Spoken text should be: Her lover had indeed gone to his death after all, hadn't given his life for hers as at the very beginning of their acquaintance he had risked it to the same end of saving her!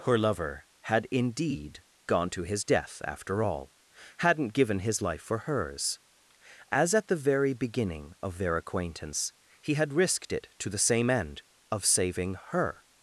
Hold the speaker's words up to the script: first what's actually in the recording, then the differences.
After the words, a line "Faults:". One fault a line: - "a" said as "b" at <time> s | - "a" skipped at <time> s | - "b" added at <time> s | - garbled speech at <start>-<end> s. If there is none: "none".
Her lover had indeed gone to his death after all, hadn't given his life for hers as at the very beginning of their acquaintance he had risked it to the same end of saving her!
Faults:
none